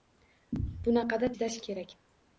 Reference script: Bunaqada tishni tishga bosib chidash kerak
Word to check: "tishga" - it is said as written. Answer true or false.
false